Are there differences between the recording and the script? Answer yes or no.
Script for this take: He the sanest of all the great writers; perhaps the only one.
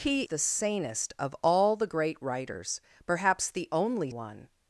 no